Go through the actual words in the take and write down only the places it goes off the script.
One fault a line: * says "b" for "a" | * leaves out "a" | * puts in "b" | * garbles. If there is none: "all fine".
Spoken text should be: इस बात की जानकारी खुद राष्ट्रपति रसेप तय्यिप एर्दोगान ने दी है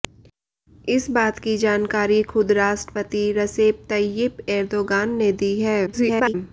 * garbles